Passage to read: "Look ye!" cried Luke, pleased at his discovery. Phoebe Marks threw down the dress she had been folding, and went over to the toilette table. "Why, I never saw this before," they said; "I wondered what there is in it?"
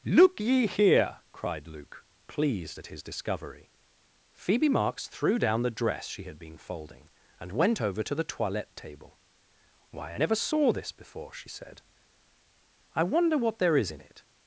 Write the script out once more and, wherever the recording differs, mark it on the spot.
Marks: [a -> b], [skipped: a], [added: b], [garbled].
"Look ye!" [added: here] cried Luke, pleased at his discovery. Phoebe Marks threw down the dress she had been folding, and went over to the toilette table. "Why, I never saw this before," [they -> she] said; "I [wondered -> wonder] what there is in it?"